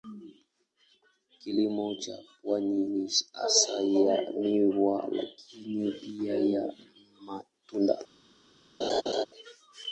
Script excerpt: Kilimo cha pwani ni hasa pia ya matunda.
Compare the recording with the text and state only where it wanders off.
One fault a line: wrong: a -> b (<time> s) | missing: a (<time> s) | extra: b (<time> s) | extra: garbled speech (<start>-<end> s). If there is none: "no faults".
extra: ya miwa lakini (3.8 s)